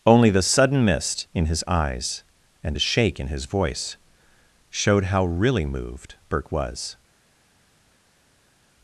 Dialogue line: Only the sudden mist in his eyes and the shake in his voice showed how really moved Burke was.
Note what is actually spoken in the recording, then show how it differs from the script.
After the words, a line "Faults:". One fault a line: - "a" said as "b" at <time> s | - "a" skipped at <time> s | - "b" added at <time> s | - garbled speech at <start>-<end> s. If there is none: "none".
Only the sudden mist in his eyes and a shake in his voice showed how really moved Burke was.
Faults:
- "the" said as "a" at 2.8 s